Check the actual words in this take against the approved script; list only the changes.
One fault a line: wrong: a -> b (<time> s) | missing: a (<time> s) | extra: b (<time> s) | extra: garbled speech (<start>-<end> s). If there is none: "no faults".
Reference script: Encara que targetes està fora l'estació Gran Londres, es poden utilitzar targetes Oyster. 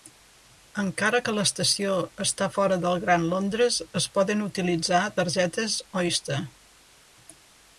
wrong: targetes -> l'estació (1.4 s)
wrong: l'estació -> del (2.8 s)